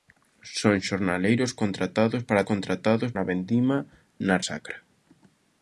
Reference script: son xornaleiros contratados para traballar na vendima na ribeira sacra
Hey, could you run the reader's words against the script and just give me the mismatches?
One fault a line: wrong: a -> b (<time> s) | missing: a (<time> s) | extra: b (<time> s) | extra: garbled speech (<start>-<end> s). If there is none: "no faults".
wrong: traballar -> contratados (2.5 s)
missing: ribeira (4.4 s)